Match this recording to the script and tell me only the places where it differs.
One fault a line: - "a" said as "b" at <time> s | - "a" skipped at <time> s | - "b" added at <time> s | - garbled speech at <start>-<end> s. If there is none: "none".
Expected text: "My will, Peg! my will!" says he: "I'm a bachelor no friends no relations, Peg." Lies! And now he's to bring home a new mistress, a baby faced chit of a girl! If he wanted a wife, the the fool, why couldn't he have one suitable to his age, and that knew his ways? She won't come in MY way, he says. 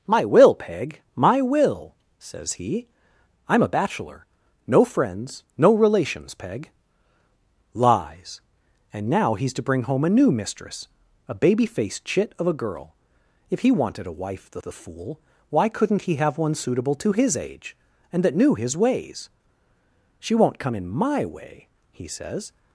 none